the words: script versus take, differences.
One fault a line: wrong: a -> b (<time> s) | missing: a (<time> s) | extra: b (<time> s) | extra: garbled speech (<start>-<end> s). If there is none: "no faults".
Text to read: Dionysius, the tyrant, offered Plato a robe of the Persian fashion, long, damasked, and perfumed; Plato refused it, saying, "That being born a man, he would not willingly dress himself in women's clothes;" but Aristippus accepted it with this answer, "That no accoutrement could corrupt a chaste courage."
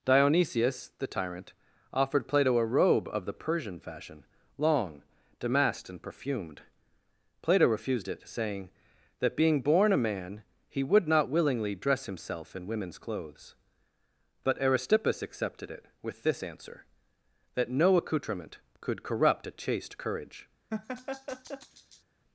no faults